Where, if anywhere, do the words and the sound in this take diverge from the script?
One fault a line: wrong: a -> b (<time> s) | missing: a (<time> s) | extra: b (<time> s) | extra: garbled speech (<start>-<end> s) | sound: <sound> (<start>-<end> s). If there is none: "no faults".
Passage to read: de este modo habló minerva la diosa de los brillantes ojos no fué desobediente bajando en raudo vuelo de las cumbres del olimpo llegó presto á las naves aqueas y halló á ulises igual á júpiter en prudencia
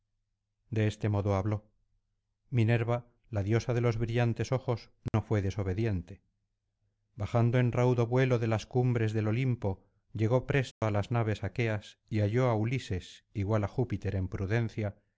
sound: dropout (5.1-5.1 s)
sound: dropout (10.7-10.8 s)